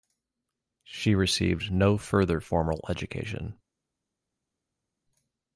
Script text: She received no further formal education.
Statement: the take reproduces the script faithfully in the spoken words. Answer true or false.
true